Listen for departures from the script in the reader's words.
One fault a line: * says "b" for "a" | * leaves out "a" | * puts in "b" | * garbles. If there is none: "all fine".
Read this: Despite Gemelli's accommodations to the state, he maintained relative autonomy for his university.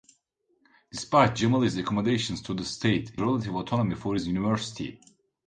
* leaves out "maintained"